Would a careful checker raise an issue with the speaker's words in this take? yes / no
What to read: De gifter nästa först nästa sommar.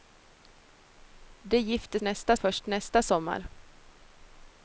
no